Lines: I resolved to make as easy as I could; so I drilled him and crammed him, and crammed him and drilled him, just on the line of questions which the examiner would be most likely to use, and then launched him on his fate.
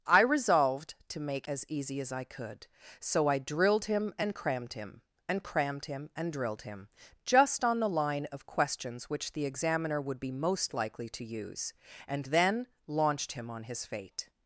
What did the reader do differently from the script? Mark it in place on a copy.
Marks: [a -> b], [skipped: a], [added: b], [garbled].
I resolved to make as easy as I could; so I drilled him and crammed him, and crammed him and drilled him, just on the line of questions which the examiner would be most likely to use, and then launched him on his fate.